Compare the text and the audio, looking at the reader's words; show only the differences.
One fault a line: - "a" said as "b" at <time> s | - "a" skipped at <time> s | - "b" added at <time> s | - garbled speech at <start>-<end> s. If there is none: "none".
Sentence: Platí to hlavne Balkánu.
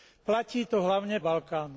none